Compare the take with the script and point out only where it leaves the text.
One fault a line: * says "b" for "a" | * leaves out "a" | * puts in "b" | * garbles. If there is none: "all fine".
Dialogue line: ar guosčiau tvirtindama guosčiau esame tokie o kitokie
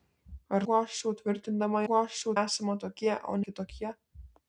all fine